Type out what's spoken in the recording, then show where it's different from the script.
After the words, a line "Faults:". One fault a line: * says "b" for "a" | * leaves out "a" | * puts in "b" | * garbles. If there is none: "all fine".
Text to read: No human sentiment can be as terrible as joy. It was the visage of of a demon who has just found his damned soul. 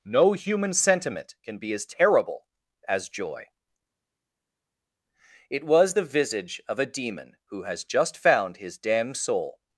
No human sentiment can be as terrible as joy. It was the visage of a demon who has just found his damned soul.
Faults:
* leaves out "of"